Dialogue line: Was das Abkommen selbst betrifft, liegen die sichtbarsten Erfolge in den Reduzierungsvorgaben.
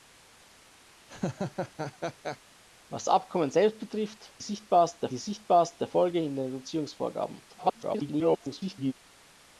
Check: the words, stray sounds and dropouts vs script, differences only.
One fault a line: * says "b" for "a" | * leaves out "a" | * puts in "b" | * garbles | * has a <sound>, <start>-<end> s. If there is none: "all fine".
* has a laugh, 1.1-2.4 s
* leaves out "das"
* says "sichtbarsten" for "liegen"
* garbles